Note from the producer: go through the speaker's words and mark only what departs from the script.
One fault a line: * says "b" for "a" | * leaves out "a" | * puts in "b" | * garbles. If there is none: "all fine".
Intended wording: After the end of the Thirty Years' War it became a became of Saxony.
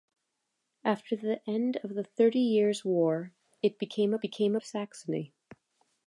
all fine